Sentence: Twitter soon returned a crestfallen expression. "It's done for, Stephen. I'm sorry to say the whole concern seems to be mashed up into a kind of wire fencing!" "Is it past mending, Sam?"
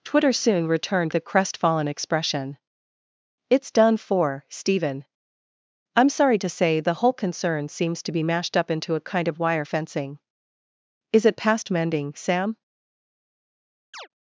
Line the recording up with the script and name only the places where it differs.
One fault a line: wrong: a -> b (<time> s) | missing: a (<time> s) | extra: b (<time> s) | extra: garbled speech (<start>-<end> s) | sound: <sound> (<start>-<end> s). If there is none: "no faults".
sound: chirp (13.9-14.1 s)